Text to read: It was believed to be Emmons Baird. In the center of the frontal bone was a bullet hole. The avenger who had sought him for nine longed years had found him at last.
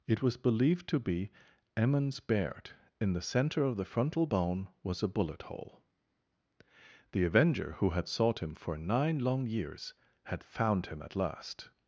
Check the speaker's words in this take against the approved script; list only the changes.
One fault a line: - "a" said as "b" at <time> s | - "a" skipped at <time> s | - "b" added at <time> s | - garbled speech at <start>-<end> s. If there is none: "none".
- "longed" said as "long" at 9.2 s